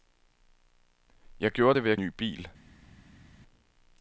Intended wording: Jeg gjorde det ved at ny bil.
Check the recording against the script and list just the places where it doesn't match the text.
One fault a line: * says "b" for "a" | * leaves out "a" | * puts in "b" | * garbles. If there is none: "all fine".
all fine